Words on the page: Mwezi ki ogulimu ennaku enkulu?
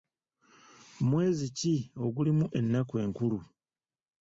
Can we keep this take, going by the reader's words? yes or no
yes